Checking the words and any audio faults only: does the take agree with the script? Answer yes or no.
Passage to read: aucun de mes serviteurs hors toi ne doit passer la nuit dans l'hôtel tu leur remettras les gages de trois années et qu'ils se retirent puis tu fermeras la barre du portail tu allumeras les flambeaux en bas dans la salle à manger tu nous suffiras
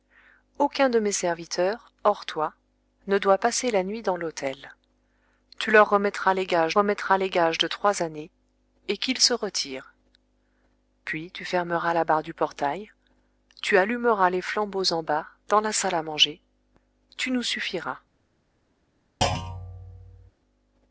no